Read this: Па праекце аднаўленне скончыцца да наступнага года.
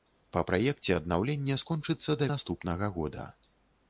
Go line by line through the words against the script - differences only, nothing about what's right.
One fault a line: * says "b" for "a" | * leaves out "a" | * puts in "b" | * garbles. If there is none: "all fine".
all fine